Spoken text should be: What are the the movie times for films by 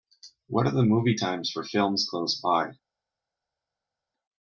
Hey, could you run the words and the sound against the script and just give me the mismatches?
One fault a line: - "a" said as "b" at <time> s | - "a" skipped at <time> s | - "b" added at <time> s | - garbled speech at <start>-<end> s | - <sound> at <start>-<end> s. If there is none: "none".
- "the" skipped at 0.8 s
- "close" added at 2.1 s